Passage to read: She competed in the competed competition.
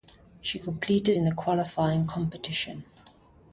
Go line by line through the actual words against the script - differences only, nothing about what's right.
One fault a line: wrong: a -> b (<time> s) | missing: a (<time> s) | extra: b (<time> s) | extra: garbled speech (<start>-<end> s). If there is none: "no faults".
wrong: competed -> qualifying (1.3 s)